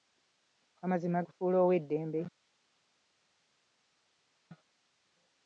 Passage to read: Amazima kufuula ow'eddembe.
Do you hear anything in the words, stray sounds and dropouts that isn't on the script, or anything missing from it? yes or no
no